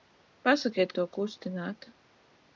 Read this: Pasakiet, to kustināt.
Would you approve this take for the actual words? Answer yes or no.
yes